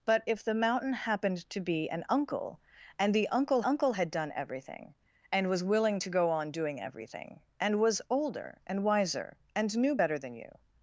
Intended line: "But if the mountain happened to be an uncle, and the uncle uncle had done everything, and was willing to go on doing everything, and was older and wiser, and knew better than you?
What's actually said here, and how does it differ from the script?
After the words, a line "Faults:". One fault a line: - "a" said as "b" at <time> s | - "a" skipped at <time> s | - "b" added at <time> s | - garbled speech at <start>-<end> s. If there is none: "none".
"But if the mountain happened to be an uncle, and the uncle uncle had done everything, and was willing to go on doing everything, and was older and wiser, and knew better than you?
Faults:
none